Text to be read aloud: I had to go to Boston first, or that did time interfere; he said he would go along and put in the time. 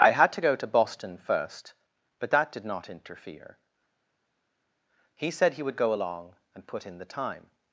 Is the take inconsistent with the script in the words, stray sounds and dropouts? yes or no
yes